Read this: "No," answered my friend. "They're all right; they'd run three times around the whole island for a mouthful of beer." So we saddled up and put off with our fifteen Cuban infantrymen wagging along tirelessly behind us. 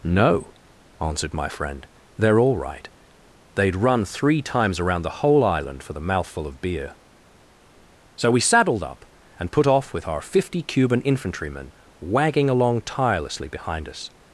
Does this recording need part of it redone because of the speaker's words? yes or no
yes